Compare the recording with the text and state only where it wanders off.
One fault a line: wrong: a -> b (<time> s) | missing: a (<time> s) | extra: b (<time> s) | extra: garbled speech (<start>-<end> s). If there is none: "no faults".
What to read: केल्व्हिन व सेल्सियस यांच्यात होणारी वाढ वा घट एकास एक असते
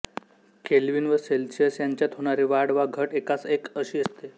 extra: अशी (3.7 s)